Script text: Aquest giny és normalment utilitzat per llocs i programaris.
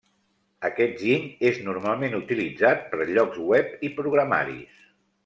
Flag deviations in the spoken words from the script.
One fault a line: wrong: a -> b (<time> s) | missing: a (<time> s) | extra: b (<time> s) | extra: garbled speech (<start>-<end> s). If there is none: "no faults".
extra: web (3.5 s)